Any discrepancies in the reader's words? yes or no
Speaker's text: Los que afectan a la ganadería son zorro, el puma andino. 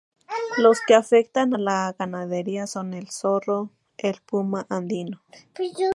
yes